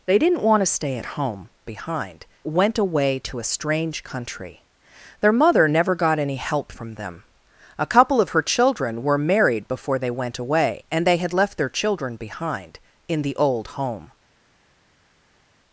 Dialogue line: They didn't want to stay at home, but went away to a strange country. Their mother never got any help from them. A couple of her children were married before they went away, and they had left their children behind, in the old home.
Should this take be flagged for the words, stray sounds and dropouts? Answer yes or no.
yes